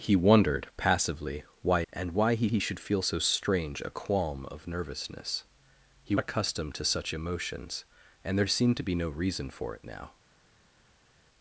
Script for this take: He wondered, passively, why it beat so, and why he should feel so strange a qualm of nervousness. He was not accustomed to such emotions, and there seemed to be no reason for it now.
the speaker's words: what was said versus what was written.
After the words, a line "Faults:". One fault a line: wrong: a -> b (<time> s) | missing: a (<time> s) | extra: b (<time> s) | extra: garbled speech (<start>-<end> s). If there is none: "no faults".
He wondered, passively, why and why he he should feel so strange a qualm of nervousness. He accustomed to such emotions, and there seemed to be no reason for it now.
Faults:
missing: it beat so (1.8 s)
extra: he (2.5 s)
missing: was not (6.1 s)